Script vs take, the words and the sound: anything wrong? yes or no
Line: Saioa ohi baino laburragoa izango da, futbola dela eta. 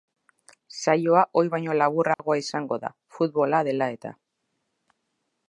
yes